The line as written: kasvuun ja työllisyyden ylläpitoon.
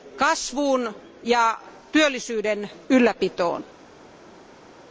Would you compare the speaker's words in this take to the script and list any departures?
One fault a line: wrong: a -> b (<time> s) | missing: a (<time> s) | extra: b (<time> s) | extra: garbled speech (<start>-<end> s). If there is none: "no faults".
no faults